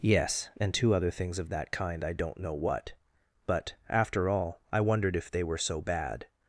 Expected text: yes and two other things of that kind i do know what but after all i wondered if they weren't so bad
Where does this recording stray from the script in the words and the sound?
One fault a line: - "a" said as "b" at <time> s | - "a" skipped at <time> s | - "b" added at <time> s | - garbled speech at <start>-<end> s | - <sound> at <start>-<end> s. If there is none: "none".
- "do" said as "don't" at 2.1 s
- "weren't" said as "were" at 5.4 s